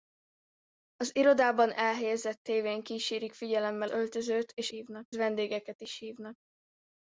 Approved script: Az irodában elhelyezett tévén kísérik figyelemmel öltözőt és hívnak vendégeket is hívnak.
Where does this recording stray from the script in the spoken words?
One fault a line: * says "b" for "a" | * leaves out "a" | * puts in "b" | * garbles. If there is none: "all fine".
all fine